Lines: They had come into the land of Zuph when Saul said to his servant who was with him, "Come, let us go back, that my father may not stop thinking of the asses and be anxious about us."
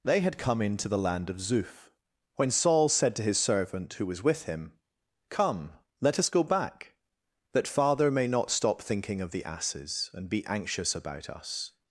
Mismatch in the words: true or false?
true